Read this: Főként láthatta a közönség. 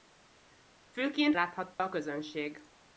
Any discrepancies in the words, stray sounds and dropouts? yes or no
yes